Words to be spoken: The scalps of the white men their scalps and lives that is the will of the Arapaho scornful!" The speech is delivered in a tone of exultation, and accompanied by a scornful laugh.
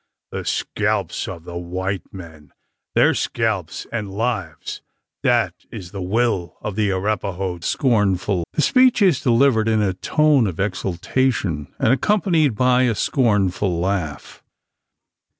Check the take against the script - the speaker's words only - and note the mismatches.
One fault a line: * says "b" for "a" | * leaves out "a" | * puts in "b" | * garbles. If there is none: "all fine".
all fine